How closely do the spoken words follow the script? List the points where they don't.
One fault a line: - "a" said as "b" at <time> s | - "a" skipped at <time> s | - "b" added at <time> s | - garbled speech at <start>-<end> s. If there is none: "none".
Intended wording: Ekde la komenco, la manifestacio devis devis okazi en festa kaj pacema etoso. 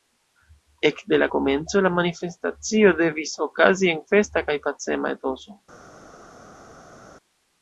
- "devis" skipped at 3.3 s